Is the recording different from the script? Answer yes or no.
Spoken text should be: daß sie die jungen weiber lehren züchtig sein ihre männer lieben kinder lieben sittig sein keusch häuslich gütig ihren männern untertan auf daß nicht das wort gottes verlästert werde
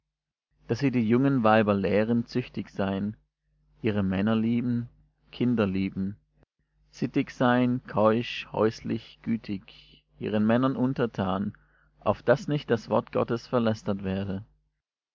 no